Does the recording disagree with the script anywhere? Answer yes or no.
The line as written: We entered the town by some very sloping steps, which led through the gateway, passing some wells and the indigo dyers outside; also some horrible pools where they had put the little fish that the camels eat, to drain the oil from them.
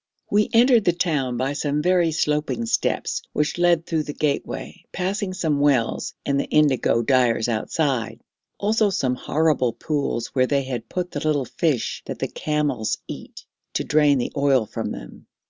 no